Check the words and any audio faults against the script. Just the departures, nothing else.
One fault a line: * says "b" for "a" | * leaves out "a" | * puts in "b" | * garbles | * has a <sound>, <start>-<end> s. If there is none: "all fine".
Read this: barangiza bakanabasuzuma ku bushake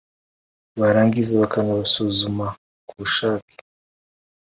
all fine